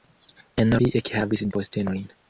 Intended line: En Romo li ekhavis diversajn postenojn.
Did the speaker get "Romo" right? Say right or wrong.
wrong